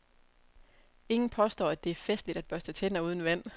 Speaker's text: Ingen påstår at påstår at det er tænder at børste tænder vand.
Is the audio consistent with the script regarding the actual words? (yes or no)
no